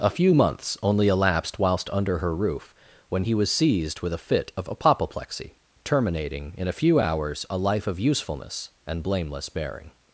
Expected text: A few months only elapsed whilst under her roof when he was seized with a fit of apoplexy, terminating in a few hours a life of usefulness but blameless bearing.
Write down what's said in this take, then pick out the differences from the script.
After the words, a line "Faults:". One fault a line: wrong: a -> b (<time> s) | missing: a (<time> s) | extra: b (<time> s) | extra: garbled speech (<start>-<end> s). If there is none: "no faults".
A few months only elapsed whilst under her roof when he was seized with a fit of apoplexy, terminating in a few hours a life of usefulness and blameless bearing.
Faults:
wrong: but -> and (8.8 s)